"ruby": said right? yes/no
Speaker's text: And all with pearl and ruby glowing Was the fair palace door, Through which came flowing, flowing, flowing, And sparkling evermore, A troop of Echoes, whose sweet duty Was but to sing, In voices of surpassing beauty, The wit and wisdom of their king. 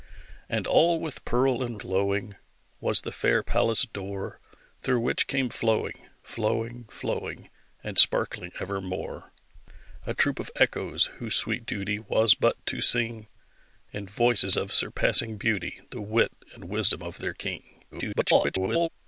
no